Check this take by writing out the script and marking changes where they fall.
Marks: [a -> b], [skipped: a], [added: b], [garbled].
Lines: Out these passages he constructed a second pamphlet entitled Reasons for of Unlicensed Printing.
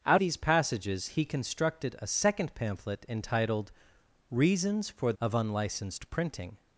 Out these passages he constructed a second pamphlet entitled Reasons for of Unlicensed Printing.